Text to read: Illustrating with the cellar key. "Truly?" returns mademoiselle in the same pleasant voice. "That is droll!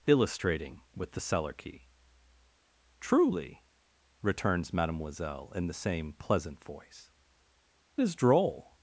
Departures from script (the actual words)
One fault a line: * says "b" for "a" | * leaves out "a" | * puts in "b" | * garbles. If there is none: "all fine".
* leaves out "That"